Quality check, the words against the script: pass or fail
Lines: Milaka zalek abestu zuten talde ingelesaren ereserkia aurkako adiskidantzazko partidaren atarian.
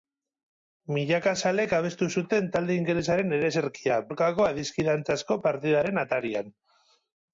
pass